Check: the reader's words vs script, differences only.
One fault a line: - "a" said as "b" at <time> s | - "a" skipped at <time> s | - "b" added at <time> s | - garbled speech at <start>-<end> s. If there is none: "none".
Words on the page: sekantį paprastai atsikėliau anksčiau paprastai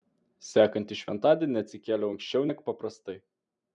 - "paprastai" said as "šventadienį" at 1.0 s
- "neg" added at 2.5 s